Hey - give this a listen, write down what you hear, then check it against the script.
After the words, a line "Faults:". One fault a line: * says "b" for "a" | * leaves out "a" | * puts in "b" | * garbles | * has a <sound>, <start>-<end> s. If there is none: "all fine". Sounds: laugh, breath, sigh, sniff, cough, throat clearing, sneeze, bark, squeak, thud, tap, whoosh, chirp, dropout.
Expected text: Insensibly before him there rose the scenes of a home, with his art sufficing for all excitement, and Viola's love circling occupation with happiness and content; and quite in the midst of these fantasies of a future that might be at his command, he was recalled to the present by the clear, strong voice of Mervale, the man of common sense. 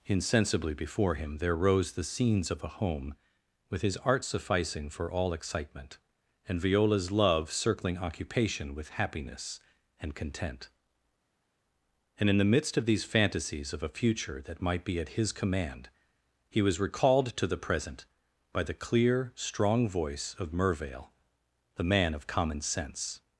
Insensibly before him there rose the scenes of a home, with his art sufficing for all excitement, and Viola's love circling occupation with happiness and content; and in the midst of these fantasies of a future that might be at his command, he was recalled to the present by the clear, strong voice of Mervale, the man of common sense.
Faults:
* leaves out "quite"